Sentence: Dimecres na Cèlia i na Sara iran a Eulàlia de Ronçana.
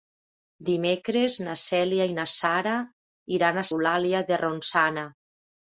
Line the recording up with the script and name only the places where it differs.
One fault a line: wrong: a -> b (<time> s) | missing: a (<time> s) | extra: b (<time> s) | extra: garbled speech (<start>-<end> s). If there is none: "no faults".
no faults